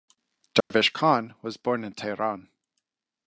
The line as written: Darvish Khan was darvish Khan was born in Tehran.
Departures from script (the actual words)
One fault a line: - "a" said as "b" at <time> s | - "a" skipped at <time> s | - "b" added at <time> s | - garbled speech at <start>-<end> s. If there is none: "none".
- "darvish Khan was" skipped at 1.6 s